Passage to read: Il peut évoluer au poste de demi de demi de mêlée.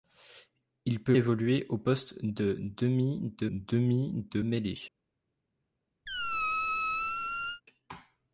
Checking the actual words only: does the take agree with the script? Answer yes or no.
yes